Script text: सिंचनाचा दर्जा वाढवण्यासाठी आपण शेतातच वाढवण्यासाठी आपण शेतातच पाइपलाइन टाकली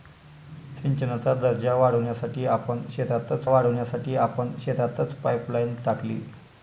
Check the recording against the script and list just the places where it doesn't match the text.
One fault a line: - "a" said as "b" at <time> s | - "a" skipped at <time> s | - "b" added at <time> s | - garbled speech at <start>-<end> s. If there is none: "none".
none